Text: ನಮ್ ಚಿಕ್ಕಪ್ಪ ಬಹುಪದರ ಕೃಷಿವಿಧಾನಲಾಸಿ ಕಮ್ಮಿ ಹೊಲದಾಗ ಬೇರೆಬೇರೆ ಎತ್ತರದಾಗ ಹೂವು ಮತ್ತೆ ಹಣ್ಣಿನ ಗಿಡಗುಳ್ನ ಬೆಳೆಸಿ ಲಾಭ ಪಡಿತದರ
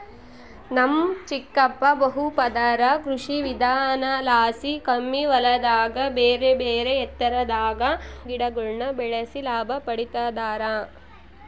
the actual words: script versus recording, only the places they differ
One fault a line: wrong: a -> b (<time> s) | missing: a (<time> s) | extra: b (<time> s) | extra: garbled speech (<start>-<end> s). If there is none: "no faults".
missing: ಹೂವು ಮತ್ತೆ ಹಣ್ಣಿನ (7.8 s)